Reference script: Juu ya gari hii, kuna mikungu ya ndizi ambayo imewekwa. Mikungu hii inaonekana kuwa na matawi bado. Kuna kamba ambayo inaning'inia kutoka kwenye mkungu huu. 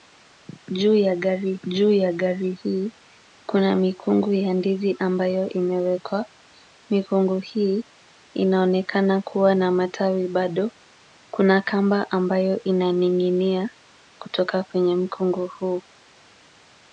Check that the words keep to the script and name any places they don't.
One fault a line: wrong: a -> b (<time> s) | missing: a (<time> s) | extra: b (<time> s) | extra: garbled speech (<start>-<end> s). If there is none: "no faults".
extra: juu ya gari (1.7 s)